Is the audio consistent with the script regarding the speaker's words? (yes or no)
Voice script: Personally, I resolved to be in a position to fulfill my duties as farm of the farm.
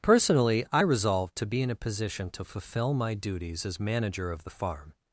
no